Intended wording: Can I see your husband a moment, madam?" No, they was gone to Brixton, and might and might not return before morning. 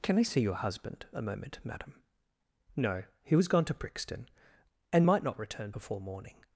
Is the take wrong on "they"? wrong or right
wrong